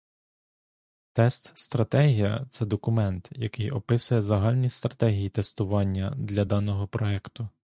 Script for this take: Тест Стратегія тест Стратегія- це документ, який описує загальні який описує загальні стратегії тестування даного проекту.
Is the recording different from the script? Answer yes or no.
yes